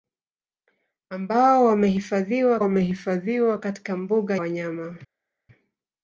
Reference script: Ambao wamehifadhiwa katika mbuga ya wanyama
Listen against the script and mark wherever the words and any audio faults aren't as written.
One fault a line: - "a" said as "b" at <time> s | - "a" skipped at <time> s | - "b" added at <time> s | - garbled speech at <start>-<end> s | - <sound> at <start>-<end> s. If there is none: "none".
- "wamehifadhiwa" added at 2.6 s
- "ya" skipped at 4.4 s